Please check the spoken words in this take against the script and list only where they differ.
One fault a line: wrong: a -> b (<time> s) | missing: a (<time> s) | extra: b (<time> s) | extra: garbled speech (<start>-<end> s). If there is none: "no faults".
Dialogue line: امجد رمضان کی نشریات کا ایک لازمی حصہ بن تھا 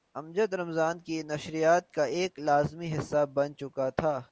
extra: چکا (3.5 s)